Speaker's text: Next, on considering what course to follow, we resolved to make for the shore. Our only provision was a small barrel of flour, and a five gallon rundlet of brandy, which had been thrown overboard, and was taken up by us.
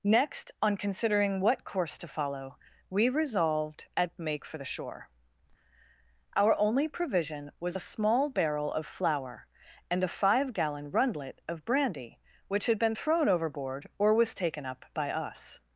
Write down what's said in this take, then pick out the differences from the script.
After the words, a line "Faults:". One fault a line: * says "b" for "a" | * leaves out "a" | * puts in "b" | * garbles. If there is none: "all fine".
Next, on considering what course to follow, we resolved at make for the shore. Our only provision was a small barrel of flour, and a five gallon rundlet of brandy, which had been thrown overboard, or was taken up by us.
Faults:
* says "at" for "to"
* says "or" for "and"